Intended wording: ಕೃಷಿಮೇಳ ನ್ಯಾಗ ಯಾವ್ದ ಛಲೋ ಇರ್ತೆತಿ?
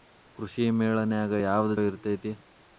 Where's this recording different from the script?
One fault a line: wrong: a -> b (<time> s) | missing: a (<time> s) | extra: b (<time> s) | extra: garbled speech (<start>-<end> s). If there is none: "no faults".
missing: ಛಲೋ (1.7 s)